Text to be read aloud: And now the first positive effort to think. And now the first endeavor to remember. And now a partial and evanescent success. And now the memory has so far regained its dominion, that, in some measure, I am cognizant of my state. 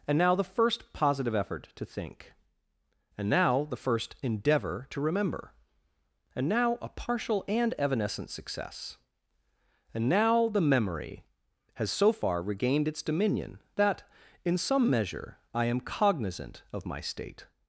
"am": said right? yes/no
yes